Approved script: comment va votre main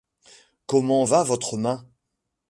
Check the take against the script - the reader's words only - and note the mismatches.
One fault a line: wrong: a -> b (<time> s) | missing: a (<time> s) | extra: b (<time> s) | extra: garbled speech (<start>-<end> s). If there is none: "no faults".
no faults